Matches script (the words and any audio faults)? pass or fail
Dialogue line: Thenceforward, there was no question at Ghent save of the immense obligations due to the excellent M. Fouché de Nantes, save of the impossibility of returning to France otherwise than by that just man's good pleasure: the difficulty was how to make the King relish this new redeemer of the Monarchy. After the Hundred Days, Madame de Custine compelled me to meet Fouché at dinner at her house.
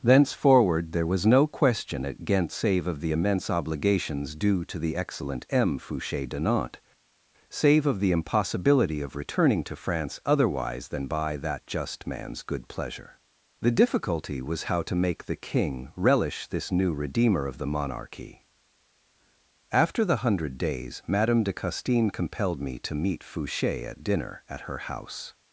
pass